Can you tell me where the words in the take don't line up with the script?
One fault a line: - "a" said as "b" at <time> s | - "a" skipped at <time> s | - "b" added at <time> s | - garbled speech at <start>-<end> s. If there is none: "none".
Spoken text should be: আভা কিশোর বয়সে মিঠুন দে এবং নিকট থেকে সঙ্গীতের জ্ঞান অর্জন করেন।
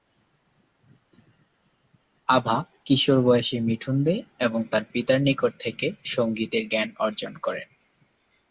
- "তার পিতার" added at 4.7 s